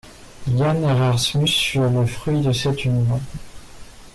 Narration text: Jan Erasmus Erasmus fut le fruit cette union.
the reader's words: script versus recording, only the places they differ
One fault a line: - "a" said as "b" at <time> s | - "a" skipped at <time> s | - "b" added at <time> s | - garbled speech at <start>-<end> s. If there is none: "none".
- "Erasmus" skipped at 1.5 s
- "de" added at 2.4 s